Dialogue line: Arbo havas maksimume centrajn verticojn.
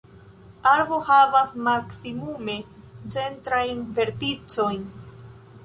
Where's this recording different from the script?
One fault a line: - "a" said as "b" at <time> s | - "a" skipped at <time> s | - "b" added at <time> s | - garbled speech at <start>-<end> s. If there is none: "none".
none